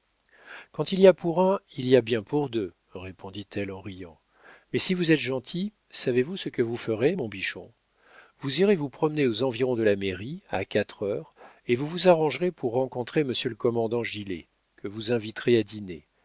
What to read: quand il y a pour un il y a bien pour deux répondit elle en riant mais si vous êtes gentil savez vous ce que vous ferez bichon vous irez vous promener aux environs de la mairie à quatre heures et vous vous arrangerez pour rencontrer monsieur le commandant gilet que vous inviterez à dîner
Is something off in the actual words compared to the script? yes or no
yes